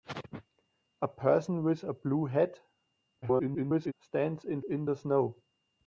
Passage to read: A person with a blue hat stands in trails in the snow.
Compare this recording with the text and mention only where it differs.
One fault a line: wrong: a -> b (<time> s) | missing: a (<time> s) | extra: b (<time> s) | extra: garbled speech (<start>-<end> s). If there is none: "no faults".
extra: garbled speech (3.2-3.9 s)
missing: trails (4.6 s)